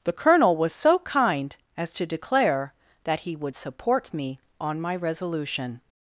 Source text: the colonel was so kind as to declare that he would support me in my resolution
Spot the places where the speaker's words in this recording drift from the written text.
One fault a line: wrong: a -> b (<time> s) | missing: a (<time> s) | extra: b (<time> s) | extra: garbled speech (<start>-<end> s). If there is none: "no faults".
wrong: in -> on (4.6 s)